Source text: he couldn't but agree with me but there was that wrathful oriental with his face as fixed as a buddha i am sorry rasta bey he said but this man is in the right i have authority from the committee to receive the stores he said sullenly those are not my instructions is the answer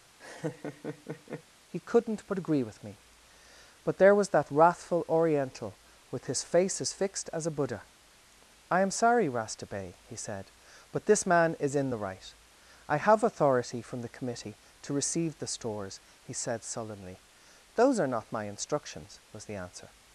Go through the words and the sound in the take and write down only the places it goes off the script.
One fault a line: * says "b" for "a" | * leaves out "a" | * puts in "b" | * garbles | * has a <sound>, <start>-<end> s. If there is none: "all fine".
* has a laugh, 0.2-1.4 s
* says "was" for "is"